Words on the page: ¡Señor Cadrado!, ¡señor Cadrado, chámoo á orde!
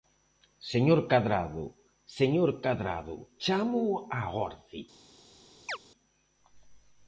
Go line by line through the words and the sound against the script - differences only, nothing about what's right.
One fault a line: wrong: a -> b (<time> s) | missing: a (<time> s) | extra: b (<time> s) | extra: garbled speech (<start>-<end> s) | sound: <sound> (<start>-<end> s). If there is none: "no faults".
sound: chirp (5.7-5.8 s)